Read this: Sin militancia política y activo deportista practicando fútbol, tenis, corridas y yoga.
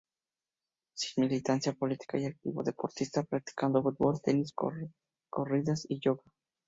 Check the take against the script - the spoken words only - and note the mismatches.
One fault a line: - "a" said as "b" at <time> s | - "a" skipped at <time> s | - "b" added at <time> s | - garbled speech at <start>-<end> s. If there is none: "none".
none